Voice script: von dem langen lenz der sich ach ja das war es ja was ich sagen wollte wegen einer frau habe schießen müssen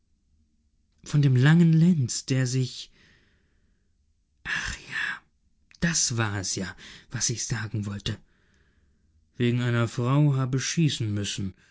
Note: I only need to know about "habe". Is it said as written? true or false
true